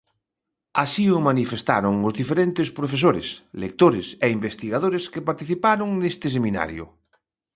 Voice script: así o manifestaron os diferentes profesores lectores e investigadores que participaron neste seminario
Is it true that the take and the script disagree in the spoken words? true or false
false